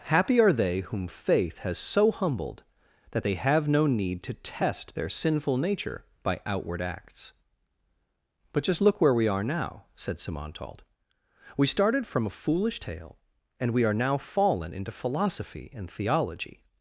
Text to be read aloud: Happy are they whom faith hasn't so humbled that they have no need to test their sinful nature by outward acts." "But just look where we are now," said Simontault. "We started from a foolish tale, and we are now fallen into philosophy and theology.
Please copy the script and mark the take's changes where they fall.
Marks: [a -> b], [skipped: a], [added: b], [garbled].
Happy are they whom faith [hasn't -> has] so humbled that they have no need to test their sinful nature by outward acts." "But just look where we are now," said Simontault. "We started from a foolish tale, and we are now fallen into philosophy and theology.